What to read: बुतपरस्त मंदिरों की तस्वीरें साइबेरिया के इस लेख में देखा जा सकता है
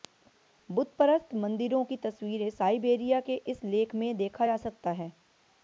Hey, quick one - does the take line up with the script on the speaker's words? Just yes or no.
yes